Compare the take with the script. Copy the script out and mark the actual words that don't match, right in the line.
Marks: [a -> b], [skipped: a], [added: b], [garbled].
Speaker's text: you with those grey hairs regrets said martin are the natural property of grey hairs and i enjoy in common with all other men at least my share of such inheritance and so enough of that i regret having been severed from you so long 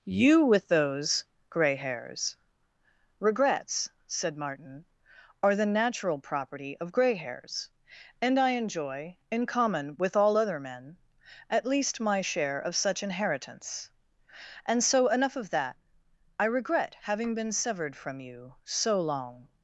you with those grey hairs regrets said martin are the natural property of grey hairs and i enjoy in common with all other men at least my share of such inheritance and so enough of that i regret having been severed from you so long